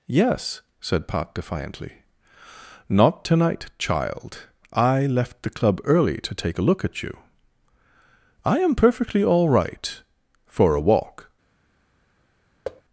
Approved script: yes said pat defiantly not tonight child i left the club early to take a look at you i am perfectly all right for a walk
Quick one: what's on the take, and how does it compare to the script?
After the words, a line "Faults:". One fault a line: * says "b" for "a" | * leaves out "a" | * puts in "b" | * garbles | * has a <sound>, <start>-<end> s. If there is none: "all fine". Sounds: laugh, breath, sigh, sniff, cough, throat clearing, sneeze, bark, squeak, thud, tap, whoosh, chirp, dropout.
yes said pat defiantly not tonight child i left the club early to take a look at you i am perfectly all right for a walk
Faults:
* has a thud, 12.6-12.8 s